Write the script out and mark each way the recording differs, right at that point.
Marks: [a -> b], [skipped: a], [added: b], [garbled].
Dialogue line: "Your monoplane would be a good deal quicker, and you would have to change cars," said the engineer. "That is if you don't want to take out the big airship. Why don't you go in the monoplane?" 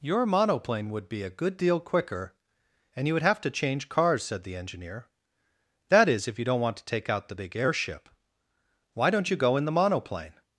"Your monoplane would be a good deal quicker, and you would have to change cars," said the engineer. "That is if you don't want to take out the big airship. Why don't you go in the monoplane?"